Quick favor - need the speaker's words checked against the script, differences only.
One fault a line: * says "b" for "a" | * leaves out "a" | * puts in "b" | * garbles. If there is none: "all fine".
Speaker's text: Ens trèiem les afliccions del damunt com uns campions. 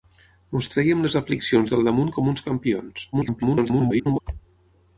* garbles